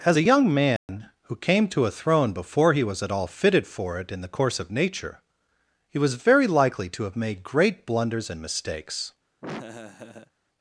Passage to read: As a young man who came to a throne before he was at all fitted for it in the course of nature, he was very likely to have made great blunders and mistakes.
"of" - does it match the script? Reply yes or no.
yes